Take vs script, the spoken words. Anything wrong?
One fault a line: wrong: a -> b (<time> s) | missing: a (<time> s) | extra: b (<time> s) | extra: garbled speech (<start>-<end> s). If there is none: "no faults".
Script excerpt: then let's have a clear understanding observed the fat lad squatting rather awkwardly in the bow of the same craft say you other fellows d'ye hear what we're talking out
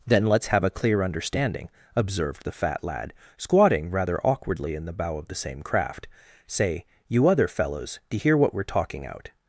no faults